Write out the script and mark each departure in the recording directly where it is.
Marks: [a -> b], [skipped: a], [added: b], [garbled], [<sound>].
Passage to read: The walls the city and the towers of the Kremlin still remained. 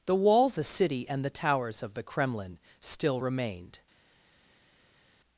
The walls the city and the towers of the Kremlin still remained.